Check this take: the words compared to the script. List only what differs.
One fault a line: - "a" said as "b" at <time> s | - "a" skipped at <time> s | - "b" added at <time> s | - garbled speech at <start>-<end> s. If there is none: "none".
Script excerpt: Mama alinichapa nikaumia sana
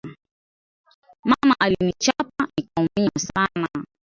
none